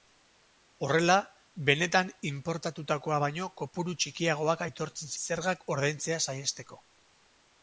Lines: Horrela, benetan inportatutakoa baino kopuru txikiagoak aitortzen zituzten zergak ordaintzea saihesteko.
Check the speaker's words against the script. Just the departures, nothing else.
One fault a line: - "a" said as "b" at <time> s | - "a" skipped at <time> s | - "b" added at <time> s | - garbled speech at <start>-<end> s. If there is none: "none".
- "zituzten" skipped at 5.1 s